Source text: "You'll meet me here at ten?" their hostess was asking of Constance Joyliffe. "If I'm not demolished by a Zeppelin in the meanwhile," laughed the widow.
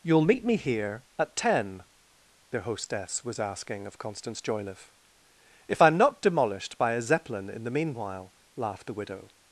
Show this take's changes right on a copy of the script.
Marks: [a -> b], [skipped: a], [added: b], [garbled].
"You'll meet me here at ten?" their hostess was asking of Constance Joyliffe. "If I'm not demolished by a Zeppelin in the meanwhile," laughed the widow.